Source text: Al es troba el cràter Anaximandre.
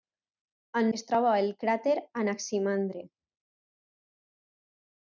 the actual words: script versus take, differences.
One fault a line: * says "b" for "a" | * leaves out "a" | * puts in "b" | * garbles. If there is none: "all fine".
all fine